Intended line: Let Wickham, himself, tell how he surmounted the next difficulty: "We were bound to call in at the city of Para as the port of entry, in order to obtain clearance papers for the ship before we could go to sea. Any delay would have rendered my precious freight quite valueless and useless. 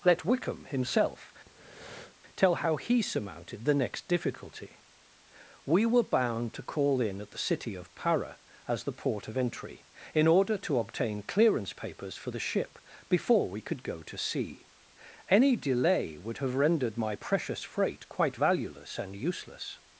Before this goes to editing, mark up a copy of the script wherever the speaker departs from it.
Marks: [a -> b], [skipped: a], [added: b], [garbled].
Let Wickham, himself, tell how he surmounted the next difficulty: "We were bound to call in at the city of Para as the port of entry, in order to obtain clearance papers for the ship before we could go to sea. Any delay would have rendered my precious freight quite valueless and useless.